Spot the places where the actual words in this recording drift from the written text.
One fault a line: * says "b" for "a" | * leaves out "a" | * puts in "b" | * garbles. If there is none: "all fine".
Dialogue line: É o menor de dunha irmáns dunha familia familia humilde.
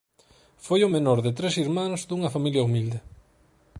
* says "Foi" for "É"
* says "tres" for "dunha"
* leaves out "familia"